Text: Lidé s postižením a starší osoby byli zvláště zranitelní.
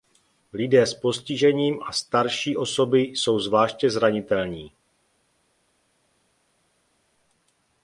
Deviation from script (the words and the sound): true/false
true